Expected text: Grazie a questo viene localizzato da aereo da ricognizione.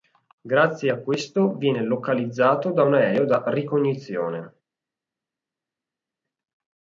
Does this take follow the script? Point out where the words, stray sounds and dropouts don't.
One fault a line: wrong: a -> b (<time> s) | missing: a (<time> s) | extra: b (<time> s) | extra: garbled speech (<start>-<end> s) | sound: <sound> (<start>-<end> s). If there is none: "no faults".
extra: un (2.8 s)